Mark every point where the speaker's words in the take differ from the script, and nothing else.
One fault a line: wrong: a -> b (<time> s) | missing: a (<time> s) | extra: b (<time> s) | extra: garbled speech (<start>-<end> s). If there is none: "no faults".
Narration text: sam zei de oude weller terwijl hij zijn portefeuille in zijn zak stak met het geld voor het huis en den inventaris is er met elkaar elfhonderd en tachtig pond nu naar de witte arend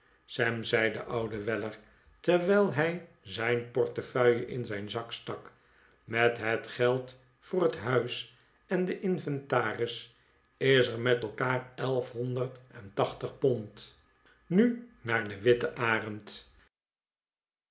no faults